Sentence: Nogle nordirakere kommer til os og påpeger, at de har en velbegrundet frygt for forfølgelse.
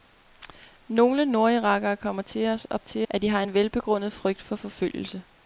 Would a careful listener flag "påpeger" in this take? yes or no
yes